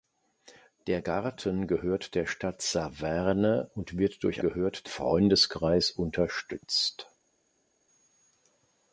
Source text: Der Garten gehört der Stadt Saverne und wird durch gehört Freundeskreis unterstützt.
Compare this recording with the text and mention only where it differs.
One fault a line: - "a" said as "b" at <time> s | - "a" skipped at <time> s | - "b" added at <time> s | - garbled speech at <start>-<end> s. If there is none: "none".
none